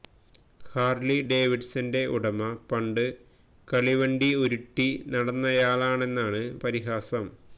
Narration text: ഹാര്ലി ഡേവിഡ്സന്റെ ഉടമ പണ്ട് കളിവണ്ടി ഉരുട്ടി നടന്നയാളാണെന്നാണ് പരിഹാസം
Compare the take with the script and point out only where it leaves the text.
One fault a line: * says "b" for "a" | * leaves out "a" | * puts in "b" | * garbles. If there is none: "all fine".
all fine